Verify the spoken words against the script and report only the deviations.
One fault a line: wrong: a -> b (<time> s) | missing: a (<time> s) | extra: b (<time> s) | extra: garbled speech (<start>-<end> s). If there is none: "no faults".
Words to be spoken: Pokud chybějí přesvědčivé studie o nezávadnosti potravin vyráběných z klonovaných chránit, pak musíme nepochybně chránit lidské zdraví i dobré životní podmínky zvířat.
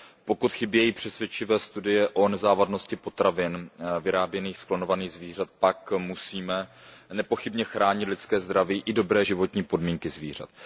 wrong: chránit -> zvířat (5.1 s)